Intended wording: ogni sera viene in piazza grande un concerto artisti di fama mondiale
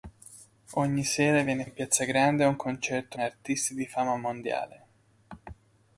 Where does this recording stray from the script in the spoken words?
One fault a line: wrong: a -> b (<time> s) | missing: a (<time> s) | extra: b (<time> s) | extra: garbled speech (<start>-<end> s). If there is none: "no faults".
no faults